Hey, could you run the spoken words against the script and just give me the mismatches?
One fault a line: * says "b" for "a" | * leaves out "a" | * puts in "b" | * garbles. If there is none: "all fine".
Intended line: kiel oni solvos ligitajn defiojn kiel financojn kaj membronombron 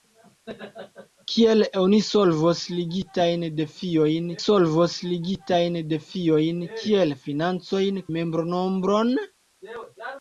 * puts in "solvos ligitajn defiojn"
* leaves out "kaj"